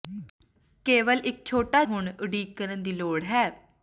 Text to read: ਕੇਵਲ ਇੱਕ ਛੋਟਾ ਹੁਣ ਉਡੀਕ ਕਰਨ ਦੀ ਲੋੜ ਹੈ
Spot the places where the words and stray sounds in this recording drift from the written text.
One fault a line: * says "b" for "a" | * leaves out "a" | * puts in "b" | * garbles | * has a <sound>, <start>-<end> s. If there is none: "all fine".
all fine